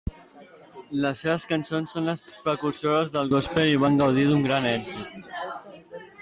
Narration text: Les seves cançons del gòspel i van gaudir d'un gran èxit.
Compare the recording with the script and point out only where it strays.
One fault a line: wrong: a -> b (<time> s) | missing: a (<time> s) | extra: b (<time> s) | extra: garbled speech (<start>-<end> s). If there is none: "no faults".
extra: són les precursores (2.0 s)